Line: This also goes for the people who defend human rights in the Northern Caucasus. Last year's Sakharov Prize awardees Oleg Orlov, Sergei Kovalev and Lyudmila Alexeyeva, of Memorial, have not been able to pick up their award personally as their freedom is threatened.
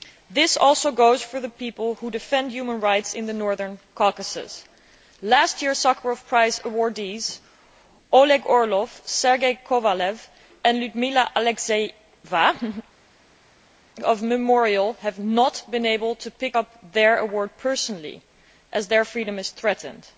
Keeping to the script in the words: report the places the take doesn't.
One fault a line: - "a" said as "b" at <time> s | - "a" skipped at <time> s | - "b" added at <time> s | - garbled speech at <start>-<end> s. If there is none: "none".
none